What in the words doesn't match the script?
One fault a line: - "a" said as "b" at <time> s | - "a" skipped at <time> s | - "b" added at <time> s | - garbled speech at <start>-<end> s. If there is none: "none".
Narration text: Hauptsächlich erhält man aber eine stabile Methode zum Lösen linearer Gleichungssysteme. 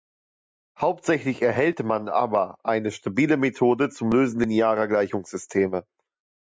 none